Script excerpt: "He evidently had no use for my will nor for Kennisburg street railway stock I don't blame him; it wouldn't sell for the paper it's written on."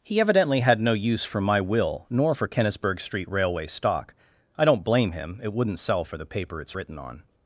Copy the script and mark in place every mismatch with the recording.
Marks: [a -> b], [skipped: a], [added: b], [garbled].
"He evidently had no use for my will nor for Kennisburg street railway stock I don't blame him; it wouldn't sell for the paper it's written on."